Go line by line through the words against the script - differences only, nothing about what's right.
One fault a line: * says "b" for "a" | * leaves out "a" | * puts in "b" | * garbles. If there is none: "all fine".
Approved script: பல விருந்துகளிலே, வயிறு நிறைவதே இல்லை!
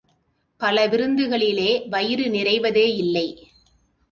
all fine